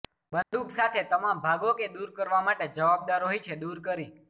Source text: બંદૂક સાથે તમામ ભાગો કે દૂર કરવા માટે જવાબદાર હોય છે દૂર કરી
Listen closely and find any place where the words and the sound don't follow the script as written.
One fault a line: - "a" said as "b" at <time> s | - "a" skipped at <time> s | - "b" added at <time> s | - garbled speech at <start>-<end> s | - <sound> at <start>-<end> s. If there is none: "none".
- dropout at 0.4-0.5 s